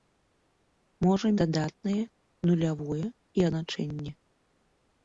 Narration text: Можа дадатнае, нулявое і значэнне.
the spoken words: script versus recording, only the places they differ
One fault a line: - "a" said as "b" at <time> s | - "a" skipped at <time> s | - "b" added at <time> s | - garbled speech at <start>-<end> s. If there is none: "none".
none